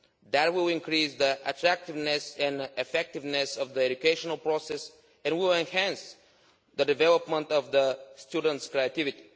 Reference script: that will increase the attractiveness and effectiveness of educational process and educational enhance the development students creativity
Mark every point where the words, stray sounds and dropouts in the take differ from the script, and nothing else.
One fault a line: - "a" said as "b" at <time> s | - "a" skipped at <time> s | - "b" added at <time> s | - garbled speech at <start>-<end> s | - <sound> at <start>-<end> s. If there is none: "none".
- "the" added at 3.7 s
- "educational" said as "will" at 5.4 s
- "of" added at 7.5 s